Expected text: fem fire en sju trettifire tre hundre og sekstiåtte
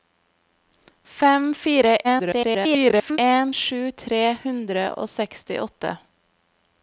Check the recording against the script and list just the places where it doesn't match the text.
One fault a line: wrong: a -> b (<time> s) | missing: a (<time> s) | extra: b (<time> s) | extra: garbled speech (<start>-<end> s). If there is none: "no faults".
extra: garbled speech (2.0-3.2 s)
missing: trettifire (3.8 s)